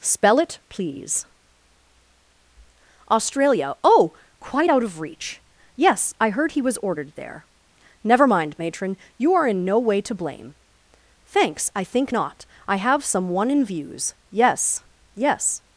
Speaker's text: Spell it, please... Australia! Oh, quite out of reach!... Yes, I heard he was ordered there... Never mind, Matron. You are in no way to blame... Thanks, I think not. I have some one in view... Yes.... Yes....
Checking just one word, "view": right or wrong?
wrong